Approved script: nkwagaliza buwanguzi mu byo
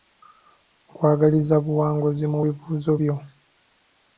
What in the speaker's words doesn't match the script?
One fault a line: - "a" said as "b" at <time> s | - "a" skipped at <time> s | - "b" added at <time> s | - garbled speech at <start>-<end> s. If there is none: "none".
- "bibuuzo" added at 2.4 s